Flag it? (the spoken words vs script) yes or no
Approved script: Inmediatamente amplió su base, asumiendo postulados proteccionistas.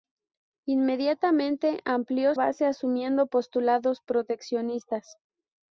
yes